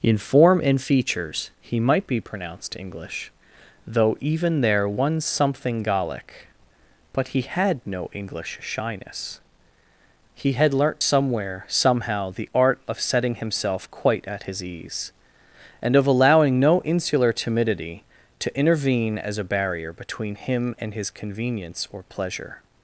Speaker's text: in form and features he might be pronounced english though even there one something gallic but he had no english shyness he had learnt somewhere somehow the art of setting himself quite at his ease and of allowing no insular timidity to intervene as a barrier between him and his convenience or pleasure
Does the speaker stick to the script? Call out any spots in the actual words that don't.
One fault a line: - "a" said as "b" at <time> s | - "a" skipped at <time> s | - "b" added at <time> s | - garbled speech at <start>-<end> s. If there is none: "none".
none